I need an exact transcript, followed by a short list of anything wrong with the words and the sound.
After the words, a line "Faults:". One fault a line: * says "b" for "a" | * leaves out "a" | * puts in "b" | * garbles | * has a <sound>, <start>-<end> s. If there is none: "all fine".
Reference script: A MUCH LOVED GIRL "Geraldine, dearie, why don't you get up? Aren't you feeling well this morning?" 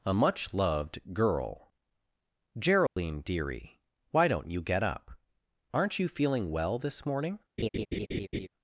A MUCH LOVED GIRL "Geraldine, dearie, why don't you get up? Aren't you feeling well this morning?"
Faults:
* has a dropout, 2.9-3.0 s
* has a laugh, 7.6-8.5 s